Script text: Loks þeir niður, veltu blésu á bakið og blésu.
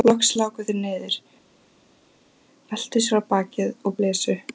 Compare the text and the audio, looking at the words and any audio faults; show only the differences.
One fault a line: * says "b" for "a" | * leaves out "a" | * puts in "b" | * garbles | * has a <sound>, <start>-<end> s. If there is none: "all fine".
* puts in "láku"
* says "sér" for "blésu"